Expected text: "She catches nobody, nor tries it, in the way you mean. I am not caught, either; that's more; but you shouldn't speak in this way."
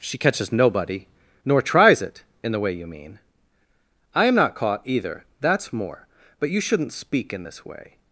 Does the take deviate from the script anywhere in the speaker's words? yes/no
no